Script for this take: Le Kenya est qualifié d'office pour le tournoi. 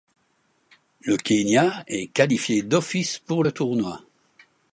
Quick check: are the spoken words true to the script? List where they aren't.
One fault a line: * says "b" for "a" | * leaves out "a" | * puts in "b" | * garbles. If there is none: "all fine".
all fine